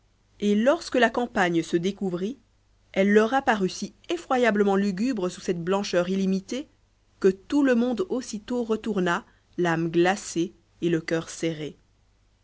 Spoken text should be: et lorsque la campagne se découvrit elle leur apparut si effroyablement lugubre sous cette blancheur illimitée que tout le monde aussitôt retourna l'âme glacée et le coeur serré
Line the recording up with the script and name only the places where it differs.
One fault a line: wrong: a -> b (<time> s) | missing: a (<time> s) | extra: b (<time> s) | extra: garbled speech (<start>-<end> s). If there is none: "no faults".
no faults